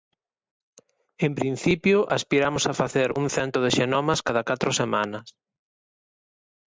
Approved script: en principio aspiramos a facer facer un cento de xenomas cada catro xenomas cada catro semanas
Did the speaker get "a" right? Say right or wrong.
right